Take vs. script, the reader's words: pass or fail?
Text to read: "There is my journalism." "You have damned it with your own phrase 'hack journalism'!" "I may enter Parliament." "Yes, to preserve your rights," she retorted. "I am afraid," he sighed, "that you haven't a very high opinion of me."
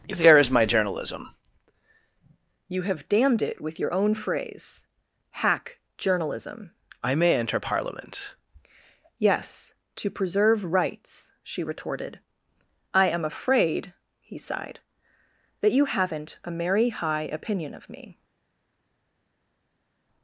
fail